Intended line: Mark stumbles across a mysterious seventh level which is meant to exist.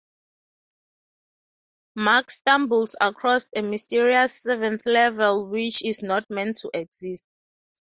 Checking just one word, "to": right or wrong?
right